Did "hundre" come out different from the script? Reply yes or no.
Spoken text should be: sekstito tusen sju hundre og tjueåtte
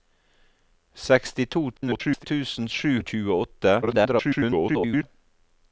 yes